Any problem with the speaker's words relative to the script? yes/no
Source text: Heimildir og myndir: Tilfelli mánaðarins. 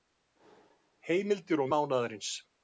yes